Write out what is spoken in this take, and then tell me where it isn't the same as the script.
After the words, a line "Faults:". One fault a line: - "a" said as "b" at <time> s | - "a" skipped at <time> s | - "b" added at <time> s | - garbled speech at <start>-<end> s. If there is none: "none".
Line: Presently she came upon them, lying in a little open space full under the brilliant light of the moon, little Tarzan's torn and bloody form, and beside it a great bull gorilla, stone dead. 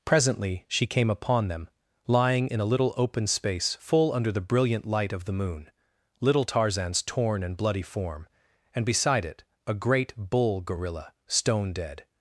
Presently she came upon them, lying in a little open space full under the brilliant light of the moon, little Tarzan's torn and bloody form, and beside it a great bull gorilla, stone dead.
Faults:
none